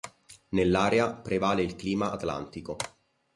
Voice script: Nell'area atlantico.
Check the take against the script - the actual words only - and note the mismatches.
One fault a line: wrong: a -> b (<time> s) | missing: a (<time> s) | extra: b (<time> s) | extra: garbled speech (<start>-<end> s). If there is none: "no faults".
extra: prevale il clima (1.1 s)